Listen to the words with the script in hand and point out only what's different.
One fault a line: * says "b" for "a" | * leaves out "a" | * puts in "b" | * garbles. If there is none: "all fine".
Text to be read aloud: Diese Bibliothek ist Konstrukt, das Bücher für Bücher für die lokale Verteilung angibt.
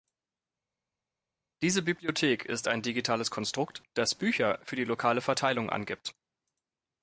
* puts in "ein digitales"
* leaves out "Bücher für"